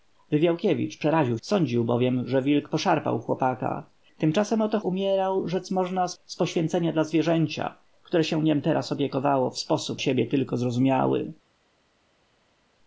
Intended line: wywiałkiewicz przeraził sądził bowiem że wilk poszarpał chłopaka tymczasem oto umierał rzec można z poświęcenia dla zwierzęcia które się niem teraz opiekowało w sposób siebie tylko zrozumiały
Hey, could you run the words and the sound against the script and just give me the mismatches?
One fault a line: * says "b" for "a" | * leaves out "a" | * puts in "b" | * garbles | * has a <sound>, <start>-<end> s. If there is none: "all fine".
all fine